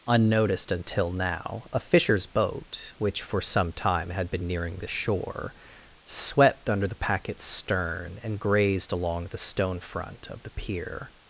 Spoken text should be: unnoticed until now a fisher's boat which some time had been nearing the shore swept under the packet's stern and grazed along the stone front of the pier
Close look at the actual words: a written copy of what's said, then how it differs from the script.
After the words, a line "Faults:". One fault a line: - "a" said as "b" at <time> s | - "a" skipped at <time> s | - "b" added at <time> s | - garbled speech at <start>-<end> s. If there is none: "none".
unnoticed until now a fisher's boat which for some time had been nearing the shore swept under the packet's stern and grazed along the stone front of the pier
Faults:
- "for" added at 3.2 s